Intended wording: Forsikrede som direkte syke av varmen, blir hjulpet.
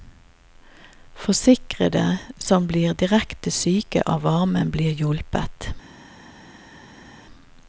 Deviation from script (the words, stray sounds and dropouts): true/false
true